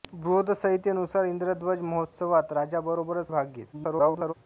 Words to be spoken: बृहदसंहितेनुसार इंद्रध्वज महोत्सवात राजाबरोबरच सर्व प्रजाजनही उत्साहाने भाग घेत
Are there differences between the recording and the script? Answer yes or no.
yes